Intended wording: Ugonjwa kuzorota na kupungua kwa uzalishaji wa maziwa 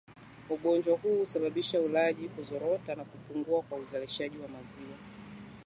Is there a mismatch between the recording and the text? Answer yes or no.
yes